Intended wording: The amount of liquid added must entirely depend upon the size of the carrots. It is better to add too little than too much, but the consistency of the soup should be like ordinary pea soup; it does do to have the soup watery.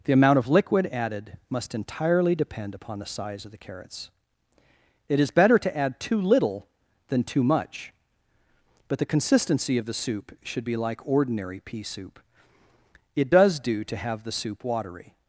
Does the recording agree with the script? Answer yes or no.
yes